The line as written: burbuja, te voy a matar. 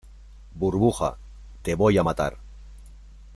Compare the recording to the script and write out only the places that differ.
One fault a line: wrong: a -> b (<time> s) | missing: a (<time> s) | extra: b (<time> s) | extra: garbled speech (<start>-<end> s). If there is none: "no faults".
no faults